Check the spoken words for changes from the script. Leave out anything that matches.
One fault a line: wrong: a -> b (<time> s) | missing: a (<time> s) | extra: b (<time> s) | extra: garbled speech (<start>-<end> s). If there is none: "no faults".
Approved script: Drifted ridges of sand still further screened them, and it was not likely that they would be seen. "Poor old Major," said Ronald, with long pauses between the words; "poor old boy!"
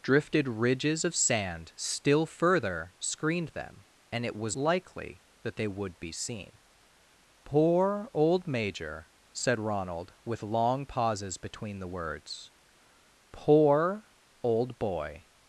missing: not (4.6 s)